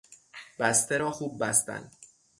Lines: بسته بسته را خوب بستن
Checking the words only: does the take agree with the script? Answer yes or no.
no